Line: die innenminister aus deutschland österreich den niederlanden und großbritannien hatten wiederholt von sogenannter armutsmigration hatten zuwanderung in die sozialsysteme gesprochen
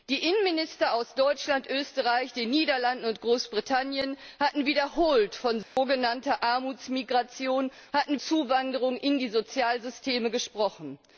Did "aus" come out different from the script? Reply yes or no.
no